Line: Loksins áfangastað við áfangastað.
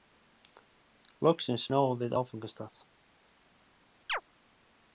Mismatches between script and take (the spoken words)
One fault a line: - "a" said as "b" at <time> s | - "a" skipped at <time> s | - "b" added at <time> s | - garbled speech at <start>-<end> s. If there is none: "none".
- "áfangastað" said as "náðum" at 1.7 s